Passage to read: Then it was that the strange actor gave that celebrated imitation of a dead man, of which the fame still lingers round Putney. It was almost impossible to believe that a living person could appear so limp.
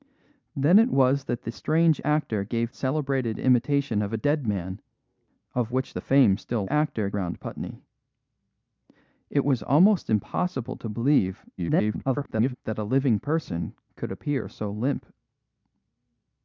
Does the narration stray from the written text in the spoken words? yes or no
yes